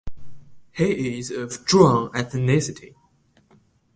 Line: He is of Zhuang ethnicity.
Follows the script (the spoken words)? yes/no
yes